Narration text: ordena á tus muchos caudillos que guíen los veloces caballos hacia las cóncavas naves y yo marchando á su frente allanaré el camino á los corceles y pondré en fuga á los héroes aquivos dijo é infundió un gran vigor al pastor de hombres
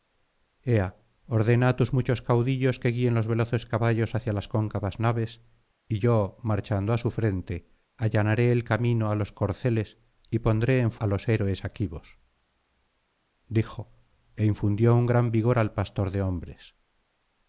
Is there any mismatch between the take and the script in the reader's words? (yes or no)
yes